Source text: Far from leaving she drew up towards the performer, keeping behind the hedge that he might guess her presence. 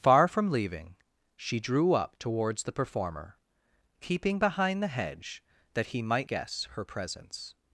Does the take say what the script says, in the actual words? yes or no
yes